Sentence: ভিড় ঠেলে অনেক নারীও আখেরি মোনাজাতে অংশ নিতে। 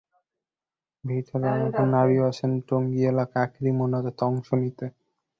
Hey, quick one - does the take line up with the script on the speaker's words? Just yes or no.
no